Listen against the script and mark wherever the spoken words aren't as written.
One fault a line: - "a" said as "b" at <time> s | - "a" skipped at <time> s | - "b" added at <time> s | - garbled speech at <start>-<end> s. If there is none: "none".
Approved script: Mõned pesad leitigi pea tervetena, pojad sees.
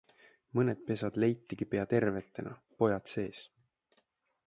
none